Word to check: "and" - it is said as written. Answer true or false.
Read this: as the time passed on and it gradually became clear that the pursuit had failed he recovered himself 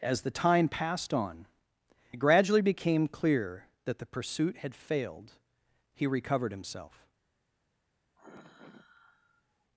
false